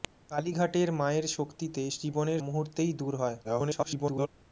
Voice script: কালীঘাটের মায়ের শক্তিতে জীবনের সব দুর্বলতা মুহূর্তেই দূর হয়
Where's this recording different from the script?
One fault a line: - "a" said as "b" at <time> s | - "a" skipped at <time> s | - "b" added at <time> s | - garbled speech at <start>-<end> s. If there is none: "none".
- "সব দুর্বলতা" skipped at 2.4 s
- garbled speech at 3.4-4.3 s